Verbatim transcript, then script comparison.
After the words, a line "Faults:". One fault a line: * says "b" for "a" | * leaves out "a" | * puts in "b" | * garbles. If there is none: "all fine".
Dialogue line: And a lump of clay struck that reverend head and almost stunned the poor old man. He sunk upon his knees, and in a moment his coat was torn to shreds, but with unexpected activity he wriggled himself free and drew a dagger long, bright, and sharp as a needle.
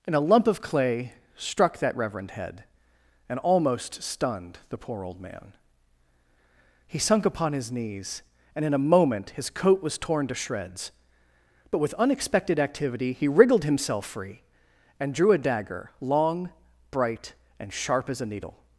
And a lump of clay struck that reverend head and almost stunned the poor old man. He sunk upon his knees, and in a moment his coat was torn to shreds, but with unexpected activity he wriggled himself free and drew a dagger long, bright, and sharp as a needle.
Faults:
all fine